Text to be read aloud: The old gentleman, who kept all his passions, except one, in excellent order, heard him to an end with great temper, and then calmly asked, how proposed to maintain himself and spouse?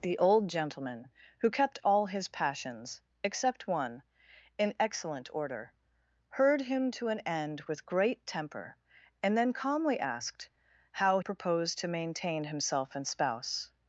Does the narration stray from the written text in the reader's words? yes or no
no